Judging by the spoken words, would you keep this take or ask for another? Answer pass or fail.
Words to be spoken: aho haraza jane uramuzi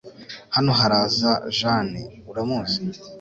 fail